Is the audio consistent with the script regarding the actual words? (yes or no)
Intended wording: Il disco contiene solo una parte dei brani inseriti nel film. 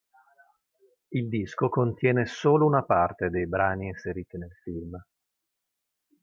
yes